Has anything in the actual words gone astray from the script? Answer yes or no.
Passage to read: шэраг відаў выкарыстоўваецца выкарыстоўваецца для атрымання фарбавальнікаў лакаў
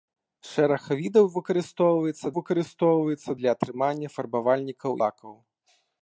no